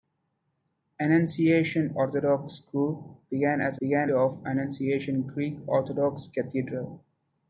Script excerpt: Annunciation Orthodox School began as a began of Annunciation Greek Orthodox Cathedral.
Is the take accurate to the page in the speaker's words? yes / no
yes